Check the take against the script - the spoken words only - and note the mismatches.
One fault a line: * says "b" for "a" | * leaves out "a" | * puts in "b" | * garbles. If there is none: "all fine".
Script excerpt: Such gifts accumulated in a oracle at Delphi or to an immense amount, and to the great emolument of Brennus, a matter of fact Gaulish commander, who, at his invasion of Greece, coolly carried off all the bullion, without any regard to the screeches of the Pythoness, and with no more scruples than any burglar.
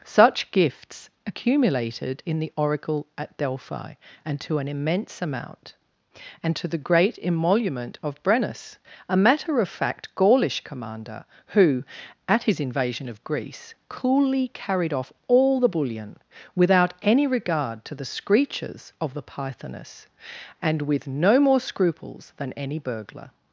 * says "the" for "a"
* says "and" for "or"